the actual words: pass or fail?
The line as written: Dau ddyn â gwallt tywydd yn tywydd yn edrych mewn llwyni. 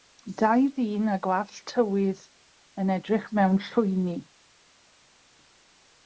fail